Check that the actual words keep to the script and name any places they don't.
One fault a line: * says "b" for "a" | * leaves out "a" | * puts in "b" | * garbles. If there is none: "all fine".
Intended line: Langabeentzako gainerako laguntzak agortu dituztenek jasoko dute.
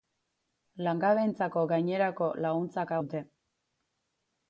* leaves out "agortu dituztenek jasoko"